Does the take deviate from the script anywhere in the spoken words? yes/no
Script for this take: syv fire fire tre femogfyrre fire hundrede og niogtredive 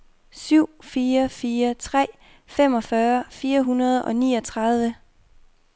no